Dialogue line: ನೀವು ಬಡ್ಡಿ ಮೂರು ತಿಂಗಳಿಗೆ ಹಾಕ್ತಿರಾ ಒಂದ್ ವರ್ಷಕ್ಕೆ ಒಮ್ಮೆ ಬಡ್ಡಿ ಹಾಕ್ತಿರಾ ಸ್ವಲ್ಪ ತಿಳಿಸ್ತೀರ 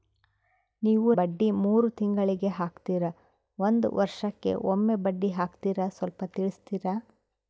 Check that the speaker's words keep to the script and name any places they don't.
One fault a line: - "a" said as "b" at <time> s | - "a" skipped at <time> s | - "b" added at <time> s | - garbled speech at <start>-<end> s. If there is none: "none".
none